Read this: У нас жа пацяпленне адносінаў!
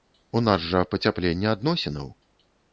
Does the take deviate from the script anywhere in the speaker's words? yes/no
no